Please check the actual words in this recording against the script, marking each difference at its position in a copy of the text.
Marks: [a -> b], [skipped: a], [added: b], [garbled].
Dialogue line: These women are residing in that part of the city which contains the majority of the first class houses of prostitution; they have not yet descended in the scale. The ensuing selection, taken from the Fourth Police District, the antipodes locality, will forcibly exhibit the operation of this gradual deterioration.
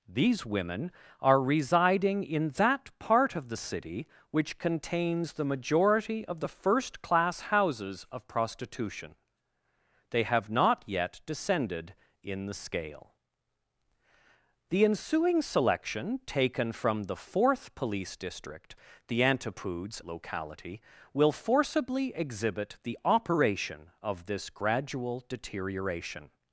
These women are residing in that part of the city which contains the majority of the first class houses of prostitution; they have not yet descended in the scale. The ensuing selection, taken from the Fourth Police District, the antipodes locality, will forcibly exhibit the operation of this gradual deterioration.